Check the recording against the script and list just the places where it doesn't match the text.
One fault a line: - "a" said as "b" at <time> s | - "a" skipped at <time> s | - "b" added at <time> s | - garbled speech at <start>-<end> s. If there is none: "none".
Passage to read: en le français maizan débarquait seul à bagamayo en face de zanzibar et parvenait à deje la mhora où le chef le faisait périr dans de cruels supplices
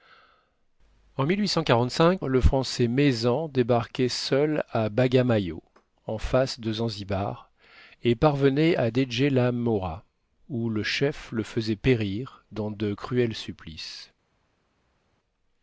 none